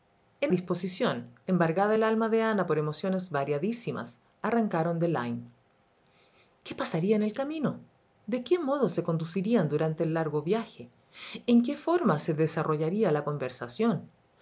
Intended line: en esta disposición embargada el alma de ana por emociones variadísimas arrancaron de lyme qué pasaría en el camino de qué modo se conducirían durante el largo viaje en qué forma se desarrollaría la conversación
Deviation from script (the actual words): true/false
true